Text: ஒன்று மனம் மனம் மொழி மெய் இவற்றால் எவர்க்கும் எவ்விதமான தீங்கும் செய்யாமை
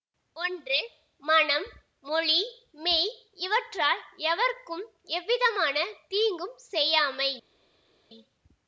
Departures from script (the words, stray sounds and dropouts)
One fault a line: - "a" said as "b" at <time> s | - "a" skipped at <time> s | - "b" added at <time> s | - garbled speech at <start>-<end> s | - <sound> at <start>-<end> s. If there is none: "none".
- "மனம்" skipped at 1.7 s